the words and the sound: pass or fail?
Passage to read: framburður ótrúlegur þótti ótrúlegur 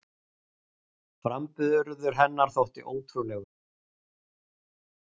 fail